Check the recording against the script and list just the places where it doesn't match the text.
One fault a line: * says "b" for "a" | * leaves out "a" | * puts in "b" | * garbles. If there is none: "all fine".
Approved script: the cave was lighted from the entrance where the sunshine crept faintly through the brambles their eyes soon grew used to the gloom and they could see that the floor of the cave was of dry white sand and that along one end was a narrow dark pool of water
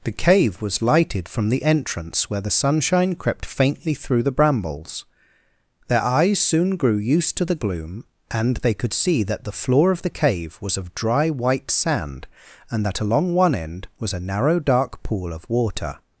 all fine